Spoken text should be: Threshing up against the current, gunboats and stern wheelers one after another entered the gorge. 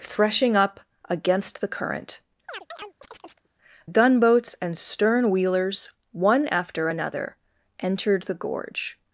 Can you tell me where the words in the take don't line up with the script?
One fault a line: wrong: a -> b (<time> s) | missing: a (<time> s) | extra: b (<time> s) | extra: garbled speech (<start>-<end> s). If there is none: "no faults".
no faults